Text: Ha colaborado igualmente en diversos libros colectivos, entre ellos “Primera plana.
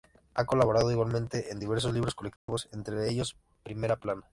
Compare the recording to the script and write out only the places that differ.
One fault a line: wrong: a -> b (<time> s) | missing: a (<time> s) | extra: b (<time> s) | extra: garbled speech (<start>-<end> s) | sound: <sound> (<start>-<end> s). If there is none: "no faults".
sound: dropout (2.4-2.5 s)